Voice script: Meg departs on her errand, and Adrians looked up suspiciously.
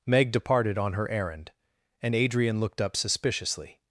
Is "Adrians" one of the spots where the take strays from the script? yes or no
yes